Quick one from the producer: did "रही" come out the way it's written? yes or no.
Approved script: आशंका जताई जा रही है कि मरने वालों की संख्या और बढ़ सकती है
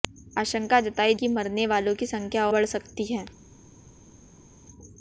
no